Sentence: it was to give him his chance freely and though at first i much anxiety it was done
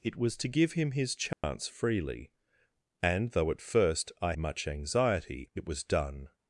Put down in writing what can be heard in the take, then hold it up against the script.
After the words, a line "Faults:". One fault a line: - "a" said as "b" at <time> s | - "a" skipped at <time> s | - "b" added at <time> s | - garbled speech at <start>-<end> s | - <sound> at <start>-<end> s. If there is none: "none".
it was to give him his chance freely and though at first i much anxiety it was done
Faults:
- dropout at 1.3-1.4 s